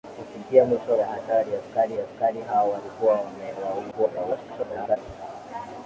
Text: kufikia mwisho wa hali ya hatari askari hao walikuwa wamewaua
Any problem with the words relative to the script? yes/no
yes